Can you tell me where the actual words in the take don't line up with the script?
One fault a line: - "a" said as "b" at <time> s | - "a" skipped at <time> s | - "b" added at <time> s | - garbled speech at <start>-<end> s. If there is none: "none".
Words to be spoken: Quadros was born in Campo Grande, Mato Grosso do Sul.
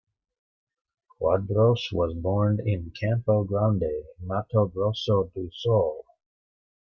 none